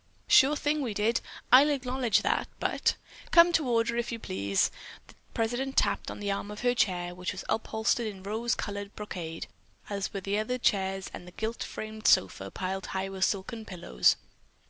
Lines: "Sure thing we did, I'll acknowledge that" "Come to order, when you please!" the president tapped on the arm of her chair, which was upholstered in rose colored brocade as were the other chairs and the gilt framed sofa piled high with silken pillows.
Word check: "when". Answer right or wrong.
wrong